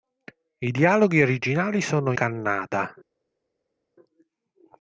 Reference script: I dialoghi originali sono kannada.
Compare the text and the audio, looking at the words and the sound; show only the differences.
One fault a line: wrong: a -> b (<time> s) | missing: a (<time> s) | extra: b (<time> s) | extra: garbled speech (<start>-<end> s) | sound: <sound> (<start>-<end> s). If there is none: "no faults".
no faults